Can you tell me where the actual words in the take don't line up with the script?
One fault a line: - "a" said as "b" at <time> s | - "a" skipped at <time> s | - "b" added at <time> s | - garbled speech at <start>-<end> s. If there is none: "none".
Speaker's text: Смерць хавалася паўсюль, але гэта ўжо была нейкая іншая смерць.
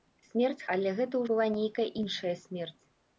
- "хавалася паўсюль" skipped at 0.7 s
- "ўжо" skipped at 1.3 s